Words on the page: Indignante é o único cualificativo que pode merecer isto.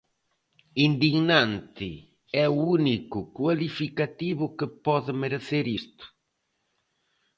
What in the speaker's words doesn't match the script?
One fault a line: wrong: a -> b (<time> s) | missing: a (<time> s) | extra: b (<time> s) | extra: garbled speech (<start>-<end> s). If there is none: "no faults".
no faults